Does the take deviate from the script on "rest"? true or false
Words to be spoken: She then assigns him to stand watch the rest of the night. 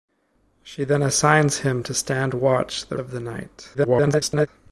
true